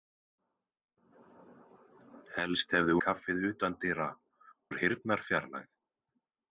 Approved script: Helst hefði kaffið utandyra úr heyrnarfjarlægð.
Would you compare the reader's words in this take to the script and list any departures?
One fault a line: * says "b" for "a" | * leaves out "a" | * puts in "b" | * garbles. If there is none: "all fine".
all fine